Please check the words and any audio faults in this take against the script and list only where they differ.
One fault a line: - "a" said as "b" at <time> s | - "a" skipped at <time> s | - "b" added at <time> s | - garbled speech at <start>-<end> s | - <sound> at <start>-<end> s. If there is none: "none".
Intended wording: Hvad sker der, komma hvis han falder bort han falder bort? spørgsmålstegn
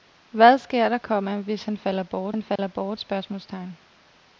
- dropout at 2.6-2.6 s